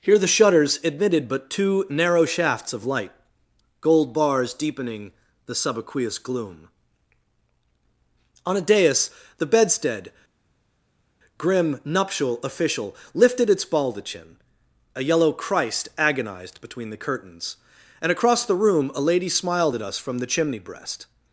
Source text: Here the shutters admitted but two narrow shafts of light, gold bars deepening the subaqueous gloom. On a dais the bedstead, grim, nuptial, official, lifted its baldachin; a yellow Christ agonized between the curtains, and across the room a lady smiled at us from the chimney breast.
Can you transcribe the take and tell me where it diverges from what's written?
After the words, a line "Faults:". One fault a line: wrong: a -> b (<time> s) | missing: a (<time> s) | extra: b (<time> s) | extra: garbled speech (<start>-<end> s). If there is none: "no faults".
Here the shutters admitted but two narrow shafts of light, gold bars deepening the subaqueous gloom. On a dais the bedstead, grim, nuptial, official, lifted its baldachin; a yellow Christ agonized between the curtains, and across the room a lady smiled at us from the chimney breast.
Faults:
no faults